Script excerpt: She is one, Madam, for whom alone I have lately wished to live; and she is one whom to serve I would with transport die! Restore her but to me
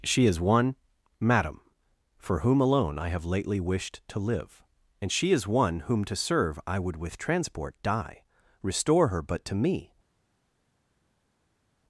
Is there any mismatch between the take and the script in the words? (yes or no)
no